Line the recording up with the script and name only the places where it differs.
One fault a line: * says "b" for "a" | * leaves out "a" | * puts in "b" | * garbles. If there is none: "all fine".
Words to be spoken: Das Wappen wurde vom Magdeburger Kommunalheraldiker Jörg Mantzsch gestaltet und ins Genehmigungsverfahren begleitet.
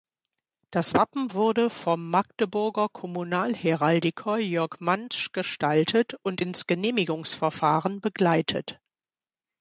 all fine